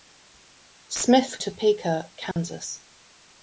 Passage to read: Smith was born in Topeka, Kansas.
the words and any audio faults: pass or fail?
fail